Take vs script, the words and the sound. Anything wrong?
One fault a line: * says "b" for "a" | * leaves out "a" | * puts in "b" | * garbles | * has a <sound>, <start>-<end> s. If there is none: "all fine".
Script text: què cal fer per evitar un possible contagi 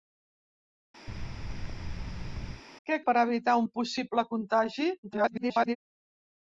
* has a thud, 1.1-2.6 s
* leaves out "cal fer"
* garbles